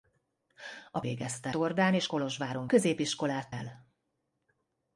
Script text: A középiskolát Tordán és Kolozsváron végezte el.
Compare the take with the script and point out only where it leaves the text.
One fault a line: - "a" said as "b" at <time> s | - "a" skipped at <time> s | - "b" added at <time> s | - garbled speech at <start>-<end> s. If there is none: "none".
- "középiskolát" said as "végezte" at 1.0 s
- "végezte" said as "középiskolát" at 2.7 s